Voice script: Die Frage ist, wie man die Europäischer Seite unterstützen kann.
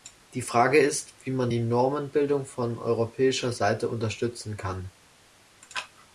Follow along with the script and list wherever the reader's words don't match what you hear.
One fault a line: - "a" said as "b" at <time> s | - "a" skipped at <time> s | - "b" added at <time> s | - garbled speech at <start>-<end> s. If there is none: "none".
- "Normenbildung von" added at 1.6 s